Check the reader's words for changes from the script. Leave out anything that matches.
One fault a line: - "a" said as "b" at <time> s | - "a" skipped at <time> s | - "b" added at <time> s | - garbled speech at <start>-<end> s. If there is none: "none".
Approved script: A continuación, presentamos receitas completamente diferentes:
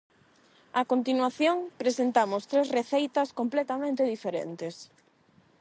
- "tres" added at 2.5 s